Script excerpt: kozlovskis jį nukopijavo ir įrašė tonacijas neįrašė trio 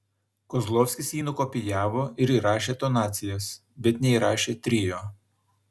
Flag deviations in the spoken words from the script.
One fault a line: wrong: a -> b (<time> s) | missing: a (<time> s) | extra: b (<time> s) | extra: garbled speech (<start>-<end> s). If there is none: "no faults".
extra: bet (3.9 s)